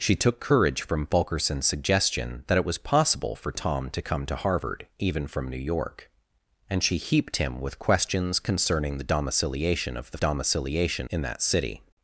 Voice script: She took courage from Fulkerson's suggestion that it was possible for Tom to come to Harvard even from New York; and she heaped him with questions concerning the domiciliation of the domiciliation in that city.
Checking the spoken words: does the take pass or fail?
pass